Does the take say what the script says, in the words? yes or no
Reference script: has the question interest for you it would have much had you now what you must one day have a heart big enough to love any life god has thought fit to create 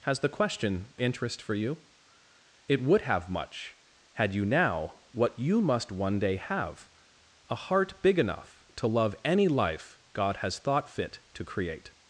yes